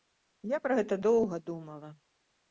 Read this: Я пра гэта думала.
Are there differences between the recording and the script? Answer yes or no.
yes